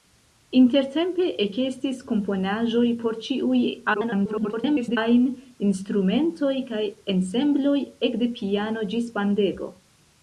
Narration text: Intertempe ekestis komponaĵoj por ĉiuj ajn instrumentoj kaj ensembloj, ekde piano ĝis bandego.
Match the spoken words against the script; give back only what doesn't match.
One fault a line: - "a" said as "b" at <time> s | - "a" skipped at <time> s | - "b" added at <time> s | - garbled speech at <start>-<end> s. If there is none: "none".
- garbled speech at 3.9-5.0 s